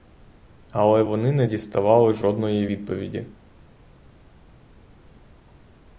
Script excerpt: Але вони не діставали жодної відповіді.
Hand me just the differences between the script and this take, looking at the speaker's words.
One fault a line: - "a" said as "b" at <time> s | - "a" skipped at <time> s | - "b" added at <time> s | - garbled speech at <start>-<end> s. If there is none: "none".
none